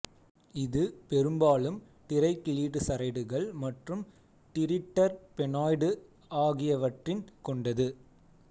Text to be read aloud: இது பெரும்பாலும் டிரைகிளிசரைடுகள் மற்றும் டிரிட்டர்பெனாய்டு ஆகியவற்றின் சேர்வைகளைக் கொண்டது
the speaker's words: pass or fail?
fail